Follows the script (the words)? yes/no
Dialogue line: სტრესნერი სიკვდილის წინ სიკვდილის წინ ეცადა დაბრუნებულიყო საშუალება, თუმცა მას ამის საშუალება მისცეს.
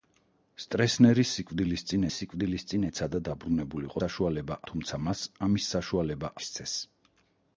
yes